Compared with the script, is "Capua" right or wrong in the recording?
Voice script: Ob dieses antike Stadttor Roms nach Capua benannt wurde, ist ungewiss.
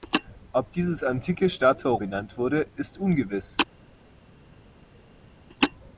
wrong